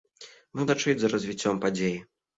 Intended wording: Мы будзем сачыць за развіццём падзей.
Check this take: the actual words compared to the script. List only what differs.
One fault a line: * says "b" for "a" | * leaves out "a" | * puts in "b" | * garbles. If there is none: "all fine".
* leaves out "будзем"